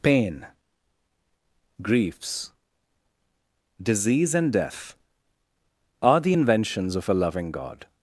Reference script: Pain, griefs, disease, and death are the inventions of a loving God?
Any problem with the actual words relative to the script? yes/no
no